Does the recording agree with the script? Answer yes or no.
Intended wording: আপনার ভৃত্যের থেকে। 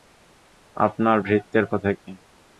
yes